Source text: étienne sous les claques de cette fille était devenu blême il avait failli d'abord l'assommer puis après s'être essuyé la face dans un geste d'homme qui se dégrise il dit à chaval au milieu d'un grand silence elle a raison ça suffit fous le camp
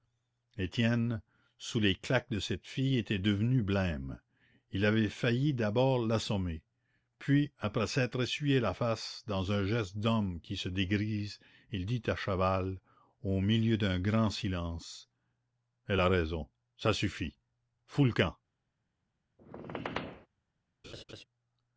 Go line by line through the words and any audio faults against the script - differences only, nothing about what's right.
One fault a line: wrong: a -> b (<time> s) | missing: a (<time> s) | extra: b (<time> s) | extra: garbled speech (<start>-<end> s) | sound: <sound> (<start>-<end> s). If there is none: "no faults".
sound: squeak (19.4-20.3 s)
sound: laugh (20.8-21.2 s)